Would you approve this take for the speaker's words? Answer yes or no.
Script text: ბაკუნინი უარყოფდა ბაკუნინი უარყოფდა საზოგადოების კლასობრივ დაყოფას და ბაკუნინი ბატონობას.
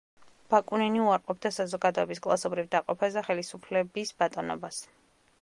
no